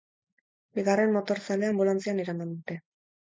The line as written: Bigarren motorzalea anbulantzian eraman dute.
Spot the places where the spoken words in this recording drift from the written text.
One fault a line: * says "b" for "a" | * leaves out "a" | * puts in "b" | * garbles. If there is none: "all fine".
all fine